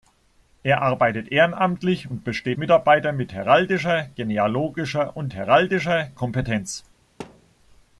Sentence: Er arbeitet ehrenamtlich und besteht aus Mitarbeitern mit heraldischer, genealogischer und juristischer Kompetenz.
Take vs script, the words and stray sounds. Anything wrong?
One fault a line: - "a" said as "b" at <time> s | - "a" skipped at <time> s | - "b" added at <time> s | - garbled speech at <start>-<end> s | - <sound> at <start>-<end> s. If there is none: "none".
- "aus" skipped at 2.6 s
- "juristischer" said as "heraldischer" at 5.3 s
- thud at 7.2-7.5 s